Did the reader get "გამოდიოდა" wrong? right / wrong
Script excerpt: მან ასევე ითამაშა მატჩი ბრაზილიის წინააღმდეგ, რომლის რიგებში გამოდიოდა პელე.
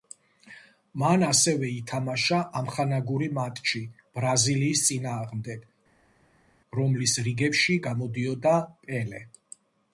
right